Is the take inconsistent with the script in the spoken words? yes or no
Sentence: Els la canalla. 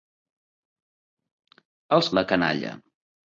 no